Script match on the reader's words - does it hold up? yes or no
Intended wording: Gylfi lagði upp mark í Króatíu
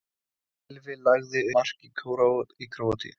no